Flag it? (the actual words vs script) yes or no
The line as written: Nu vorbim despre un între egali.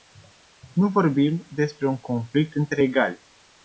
yes